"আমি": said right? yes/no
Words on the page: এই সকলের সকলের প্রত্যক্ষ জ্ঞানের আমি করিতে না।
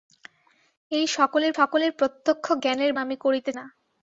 yes